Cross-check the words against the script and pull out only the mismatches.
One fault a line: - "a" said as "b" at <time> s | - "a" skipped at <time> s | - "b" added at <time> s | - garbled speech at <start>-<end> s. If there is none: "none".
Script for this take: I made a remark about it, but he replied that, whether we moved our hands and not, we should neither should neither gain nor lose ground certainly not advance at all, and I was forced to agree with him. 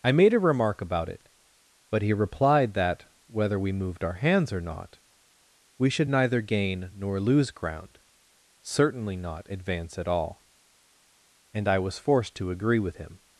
- "and" said as "or" at 4.5 s
- "should neither" skipped at 6.4 s